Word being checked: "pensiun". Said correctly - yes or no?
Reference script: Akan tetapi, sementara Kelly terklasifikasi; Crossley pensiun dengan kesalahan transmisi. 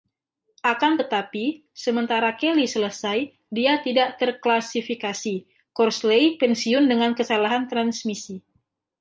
yes